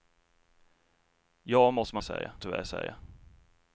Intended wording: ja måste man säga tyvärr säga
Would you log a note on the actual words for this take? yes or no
no